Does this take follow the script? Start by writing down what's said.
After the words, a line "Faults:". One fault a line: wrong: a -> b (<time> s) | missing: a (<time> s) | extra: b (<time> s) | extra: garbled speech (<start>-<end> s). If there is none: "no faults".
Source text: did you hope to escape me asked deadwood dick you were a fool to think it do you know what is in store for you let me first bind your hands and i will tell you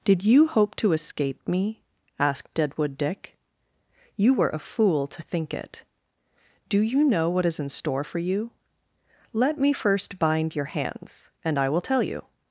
did you hope to escape me asked deadwood dick you were a fool to think it do you know what is in store for you let me first bind your hands and i will tell you
Faults:
no faults